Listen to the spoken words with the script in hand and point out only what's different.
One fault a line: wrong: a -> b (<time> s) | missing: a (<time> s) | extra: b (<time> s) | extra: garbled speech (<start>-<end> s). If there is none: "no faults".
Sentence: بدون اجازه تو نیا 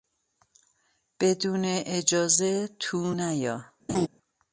no faults